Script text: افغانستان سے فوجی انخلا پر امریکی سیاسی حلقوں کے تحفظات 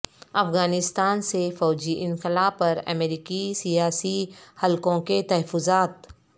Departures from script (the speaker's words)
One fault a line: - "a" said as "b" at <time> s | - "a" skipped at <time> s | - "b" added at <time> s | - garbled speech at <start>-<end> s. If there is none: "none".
none